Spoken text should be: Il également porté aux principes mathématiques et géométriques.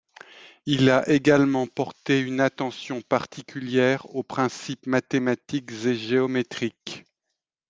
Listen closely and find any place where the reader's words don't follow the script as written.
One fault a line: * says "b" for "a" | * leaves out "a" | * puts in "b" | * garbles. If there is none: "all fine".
* puts in "a"
* puts in "une attention particulière"